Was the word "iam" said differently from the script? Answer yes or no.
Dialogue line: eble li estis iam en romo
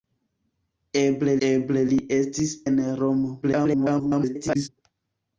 yes